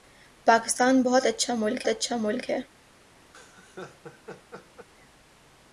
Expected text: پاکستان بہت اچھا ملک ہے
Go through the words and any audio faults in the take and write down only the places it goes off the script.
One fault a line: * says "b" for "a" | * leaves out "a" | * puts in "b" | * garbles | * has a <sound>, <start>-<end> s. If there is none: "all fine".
* puts in "اچھا ملک"
* has a laugh, 3.3-4.9 s